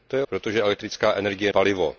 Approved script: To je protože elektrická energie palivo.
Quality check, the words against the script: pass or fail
pass